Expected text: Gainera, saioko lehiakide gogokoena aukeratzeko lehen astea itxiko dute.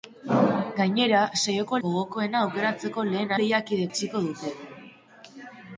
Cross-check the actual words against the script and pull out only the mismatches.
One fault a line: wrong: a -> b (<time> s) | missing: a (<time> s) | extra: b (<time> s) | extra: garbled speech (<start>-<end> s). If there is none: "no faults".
missing: lehiakide (1.8 s)
wrong: astea -> lehiakide (3.4 s)